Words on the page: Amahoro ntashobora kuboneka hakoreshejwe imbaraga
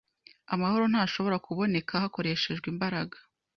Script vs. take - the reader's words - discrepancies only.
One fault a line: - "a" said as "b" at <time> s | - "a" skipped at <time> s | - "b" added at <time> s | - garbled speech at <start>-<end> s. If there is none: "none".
none